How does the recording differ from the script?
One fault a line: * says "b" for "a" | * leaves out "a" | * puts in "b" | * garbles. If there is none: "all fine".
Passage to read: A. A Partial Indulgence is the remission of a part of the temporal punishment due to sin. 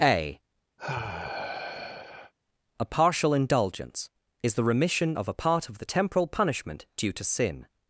all fine